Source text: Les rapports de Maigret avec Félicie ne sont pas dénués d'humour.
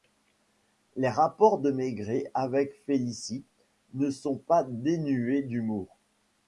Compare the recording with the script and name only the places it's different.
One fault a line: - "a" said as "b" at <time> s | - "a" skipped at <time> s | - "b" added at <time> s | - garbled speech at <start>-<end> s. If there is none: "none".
none